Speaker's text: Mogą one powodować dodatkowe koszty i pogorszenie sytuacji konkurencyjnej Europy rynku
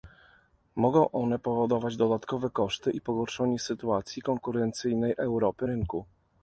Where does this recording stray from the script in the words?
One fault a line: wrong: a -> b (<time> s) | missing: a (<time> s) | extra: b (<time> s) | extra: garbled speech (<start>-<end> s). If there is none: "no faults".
no faults